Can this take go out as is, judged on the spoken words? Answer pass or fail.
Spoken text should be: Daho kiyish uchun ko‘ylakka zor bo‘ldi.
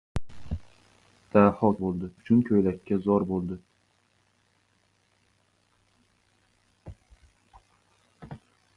fail